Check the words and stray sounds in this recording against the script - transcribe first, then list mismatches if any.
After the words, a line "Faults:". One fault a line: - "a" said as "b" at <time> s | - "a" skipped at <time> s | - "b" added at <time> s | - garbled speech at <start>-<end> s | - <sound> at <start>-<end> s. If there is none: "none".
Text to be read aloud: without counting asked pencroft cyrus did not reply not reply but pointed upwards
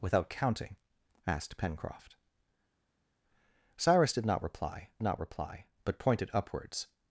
without counting asked pencroft cyrus did not reply not reply but pointed upwards
Faults:
none